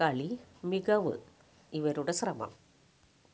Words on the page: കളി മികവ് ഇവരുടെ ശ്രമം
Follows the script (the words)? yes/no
yes